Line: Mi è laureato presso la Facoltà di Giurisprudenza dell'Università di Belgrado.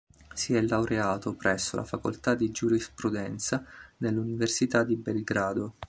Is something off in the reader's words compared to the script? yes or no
yes